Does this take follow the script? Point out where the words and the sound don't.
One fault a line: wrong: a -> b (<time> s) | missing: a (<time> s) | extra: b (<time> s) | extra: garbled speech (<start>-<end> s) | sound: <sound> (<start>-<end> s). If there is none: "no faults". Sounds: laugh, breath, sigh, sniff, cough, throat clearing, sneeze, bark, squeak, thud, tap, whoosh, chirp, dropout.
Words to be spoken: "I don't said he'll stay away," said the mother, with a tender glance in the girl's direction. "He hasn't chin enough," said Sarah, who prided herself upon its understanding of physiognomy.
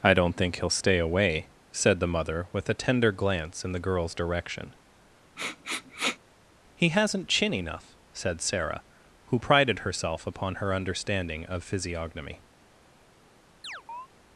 wrong: said -> think (0.3 s)
sound: sniff (5.4-6.2 s)
wrong: its -> her (10.6 s)
sound: chirp (13.6-14.1 s)